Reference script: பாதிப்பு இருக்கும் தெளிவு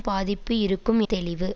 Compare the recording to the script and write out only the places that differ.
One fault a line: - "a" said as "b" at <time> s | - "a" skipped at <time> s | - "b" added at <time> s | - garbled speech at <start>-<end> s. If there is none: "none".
none